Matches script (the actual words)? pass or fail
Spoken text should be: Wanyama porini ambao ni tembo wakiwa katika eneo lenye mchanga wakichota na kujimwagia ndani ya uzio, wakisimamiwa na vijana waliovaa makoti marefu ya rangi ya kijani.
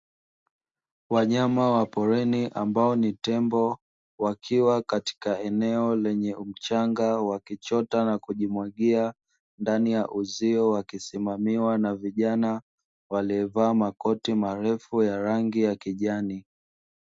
fail